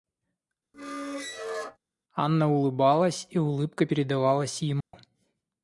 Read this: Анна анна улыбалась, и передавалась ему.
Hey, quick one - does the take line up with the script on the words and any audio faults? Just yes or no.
no